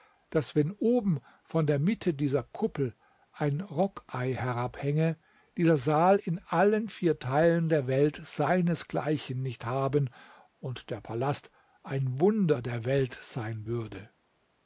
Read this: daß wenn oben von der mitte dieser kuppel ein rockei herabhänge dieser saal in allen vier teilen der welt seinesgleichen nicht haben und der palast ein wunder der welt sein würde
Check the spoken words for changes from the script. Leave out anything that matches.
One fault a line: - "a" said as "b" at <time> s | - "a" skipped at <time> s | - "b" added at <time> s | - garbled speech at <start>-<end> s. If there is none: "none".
none